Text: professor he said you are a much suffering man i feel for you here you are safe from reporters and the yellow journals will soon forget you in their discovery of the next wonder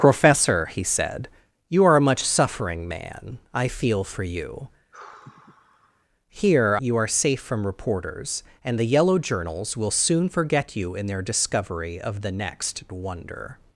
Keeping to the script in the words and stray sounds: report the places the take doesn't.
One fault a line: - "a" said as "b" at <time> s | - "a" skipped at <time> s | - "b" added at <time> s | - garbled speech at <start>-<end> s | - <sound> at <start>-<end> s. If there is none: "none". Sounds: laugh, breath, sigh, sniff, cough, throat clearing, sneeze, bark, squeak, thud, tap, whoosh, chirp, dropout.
- sigh at 4.9-6.1 s